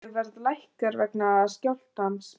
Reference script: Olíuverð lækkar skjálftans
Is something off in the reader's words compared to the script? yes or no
yes